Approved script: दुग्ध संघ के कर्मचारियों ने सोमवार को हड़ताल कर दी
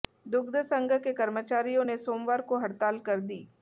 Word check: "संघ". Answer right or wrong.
right